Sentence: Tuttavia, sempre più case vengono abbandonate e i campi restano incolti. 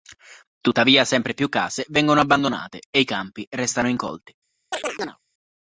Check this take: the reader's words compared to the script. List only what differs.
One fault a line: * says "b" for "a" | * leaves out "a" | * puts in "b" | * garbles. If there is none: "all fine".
all fine